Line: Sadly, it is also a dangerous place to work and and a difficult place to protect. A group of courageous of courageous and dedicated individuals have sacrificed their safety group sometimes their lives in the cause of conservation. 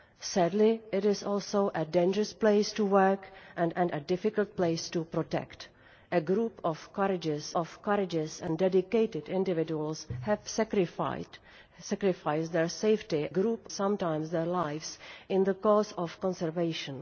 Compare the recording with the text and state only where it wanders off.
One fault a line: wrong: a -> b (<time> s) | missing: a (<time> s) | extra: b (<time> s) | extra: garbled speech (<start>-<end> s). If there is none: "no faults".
no faults